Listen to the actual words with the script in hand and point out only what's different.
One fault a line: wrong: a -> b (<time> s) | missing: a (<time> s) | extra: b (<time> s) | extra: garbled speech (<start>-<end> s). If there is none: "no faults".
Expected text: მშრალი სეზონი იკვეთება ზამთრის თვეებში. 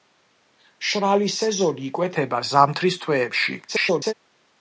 extra: garbled speech (3.7-4.1 s)